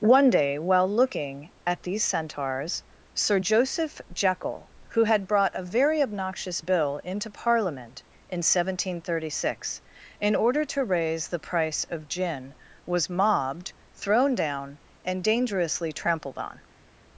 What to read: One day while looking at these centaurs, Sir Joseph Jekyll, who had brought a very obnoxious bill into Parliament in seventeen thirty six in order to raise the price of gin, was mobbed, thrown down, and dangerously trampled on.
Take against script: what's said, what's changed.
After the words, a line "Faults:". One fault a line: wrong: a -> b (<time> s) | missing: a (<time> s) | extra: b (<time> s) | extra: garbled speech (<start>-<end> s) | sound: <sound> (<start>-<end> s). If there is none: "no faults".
One day while looking at these centaurs, Sir Joseph Jekyll, who had brought a very obnoxious bill into Parliament in seventeen thirty six in order to raise the price of gin, was mobbed, thrown down, and dangerously trampled on.
Faults:
no faults